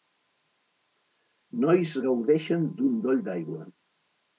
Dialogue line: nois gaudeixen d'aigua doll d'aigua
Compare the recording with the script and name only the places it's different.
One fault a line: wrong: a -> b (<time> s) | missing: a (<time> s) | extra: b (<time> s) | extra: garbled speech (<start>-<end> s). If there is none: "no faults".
wrong: d'aigua -> d'un (2.8 s)